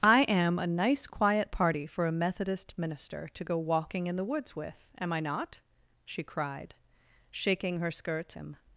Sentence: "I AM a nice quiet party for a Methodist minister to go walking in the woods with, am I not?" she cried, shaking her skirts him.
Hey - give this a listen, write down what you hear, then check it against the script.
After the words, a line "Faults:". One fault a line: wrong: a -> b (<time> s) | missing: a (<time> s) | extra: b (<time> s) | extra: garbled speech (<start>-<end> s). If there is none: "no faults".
"I AM a nice quiet party for a Methodist minister to go walking in the woods with, am I not?" she cried, shaking her skirts him.
Faults:
no faults